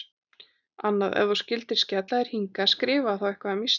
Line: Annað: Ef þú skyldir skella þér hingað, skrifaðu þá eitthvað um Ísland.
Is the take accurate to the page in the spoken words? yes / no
yes